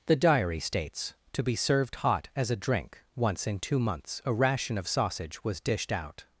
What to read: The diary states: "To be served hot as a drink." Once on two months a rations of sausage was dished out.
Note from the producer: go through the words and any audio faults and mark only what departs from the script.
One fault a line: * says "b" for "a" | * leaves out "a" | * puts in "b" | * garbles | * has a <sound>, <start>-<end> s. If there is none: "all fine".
* says "in" for "on"
* says "ration" for "rations"